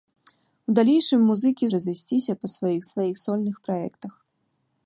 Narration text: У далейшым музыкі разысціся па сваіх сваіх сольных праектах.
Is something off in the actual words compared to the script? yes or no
no